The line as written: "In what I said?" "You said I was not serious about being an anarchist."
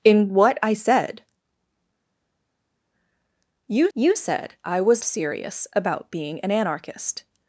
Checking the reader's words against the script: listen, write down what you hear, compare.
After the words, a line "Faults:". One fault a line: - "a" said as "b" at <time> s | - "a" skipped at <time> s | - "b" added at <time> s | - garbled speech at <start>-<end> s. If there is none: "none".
"In what I said?" "You you said I was serious about being an anarchist."
Faults:
- "you" added at 3.9 s
- "not" skipped at 5.0 s